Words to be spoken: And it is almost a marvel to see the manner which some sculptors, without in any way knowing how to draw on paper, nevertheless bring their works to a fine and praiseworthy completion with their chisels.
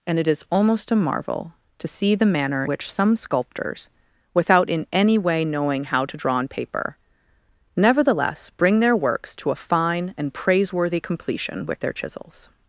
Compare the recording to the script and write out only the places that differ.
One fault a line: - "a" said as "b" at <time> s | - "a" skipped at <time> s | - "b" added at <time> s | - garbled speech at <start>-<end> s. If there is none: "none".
none